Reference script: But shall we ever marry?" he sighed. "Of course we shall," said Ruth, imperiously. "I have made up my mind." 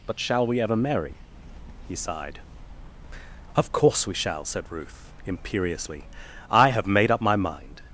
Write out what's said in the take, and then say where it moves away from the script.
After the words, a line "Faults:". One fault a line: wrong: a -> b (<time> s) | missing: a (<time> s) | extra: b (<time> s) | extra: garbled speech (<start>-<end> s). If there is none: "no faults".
But shall we ever marry?" he sighed. "Of course we shall," said Ruth, imperiously. "I have made up my mind."
Faults:
no faults